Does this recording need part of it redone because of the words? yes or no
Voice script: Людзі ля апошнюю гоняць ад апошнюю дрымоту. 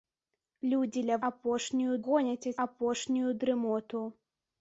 no